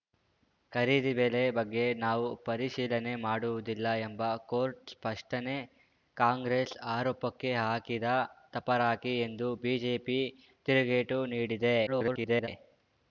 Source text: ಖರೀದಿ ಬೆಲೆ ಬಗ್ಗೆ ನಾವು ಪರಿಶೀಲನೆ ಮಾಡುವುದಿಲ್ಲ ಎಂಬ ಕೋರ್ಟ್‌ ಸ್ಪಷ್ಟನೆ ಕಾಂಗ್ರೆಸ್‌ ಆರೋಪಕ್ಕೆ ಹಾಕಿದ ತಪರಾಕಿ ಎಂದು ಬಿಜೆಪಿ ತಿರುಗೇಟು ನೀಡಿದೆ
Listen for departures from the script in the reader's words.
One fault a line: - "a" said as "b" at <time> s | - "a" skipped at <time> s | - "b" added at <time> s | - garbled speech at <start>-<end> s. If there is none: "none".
- garbled speech at 11.9-12.5 s